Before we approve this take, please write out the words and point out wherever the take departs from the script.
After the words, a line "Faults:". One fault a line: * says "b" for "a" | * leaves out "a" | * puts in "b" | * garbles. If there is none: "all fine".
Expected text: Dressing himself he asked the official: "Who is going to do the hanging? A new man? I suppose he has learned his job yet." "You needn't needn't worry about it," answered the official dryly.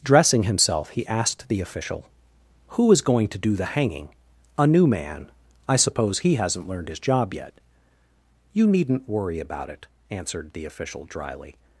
Dressing himself he asked the official: "Who is going to do the hanging? A new man? I suppose he hasn't learned his job yet." "You needn't worry about it," answered the official dryly.
Faults:
* says "hasn't" for "has"
* leaves out "needn't"